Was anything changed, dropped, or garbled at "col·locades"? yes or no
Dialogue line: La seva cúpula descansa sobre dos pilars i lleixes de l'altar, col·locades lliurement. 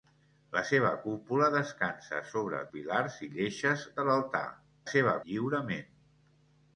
yes